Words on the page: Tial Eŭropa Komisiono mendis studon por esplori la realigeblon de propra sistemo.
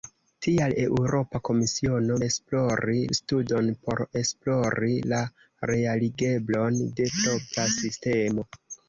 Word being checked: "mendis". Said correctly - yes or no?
no